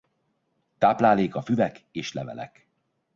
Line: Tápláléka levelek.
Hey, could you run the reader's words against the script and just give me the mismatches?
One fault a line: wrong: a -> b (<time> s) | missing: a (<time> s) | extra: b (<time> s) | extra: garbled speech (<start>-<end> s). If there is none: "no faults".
extra: füvek és (1.4 s)